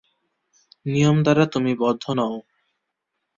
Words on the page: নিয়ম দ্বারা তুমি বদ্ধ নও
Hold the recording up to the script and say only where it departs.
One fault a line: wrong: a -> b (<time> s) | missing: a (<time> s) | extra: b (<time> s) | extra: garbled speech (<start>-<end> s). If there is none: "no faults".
no faults